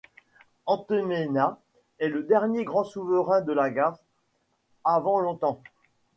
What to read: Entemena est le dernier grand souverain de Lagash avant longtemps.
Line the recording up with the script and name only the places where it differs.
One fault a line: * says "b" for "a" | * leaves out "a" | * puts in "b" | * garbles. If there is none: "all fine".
all fine